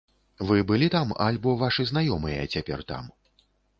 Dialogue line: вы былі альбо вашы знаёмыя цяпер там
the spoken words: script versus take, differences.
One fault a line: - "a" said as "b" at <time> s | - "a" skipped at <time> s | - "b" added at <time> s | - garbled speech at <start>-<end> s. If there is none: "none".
- "там" added at 0.9 s